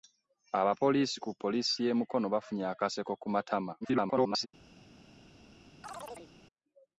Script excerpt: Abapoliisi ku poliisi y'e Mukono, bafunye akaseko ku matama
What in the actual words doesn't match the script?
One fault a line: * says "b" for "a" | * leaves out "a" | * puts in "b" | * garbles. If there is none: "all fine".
* garbles